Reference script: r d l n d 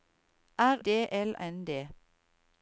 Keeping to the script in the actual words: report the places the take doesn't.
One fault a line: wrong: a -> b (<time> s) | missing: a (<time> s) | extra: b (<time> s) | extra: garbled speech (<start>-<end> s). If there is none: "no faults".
no faults